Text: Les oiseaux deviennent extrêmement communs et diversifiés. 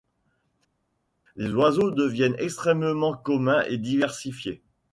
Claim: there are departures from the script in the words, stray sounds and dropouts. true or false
false